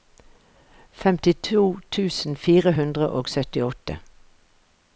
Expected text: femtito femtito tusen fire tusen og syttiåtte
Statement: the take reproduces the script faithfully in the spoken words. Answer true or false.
false